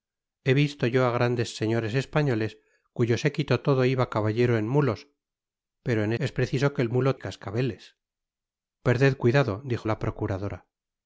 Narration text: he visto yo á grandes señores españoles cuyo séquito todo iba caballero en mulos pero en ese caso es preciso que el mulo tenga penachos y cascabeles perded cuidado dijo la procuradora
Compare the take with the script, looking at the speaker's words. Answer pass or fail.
fail